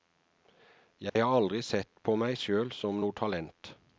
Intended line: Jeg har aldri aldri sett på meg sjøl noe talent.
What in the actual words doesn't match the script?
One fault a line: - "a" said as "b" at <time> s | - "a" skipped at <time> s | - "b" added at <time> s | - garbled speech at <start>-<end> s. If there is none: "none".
- "aldri" skipped at 1.6 s
- "som" added at 2.8 s